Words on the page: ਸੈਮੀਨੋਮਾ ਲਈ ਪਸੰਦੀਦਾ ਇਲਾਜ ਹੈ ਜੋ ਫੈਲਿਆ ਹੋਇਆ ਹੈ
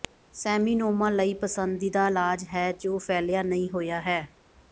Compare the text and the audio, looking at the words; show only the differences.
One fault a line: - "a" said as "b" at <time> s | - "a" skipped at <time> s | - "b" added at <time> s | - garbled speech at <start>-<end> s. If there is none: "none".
- "ਨਹੀਂ" added at 3.4 s